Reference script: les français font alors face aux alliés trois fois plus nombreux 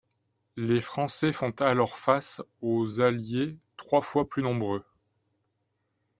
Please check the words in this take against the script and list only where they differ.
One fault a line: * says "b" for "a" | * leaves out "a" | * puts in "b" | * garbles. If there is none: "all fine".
all fine